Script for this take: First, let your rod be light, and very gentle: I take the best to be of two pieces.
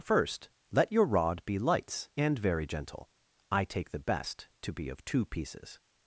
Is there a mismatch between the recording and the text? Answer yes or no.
yes